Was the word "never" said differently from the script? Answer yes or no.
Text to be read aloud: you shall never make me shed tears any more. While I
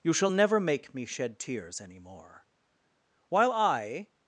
no